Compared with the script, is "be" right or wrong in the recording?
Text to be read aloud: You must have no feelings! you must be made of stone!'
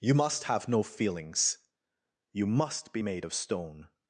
right